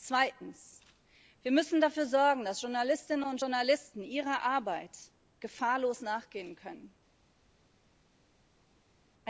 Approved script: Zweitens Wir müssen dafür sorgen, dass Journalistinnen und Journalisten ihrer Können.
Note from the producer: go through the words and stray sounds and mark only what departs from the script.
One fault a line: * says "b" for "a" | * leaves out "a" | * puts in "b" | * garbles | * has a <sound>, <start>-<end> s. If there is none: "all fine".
* puts in "Arbeit gefahrlos nachgehen"